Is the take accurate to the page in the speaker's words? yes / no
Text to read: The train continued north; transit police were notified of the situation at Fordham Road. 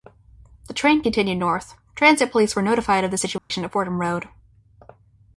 yes